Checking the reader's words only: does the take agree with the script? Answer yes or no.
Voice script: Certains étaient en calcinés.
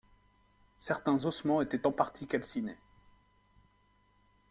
no